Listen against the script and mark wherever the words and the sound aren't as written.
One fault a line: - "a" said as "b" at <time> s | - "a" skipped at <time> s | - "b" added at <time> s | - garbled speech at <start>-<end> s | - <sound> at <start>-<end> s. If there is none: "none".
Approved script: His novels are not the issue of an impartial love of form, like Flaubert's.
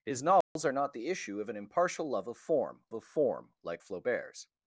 - dropout at 0.4-0.6 s
- "of form" added at 2.9 s